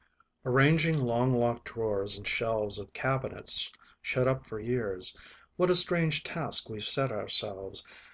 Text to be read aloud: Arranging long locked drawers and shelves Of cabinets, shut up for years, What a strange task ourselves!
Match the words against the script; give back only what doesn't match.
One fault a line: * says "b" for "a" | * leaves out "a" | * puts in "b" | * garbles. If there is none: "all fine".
* puts in "we've set"